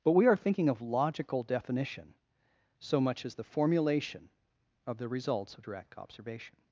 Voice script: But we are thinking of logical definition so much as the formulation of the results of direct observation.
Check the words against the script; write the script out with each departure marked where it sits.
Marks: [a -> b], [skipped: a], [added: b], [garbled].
But we are thinking of logical definition so much as the formulation of the results of direct observation.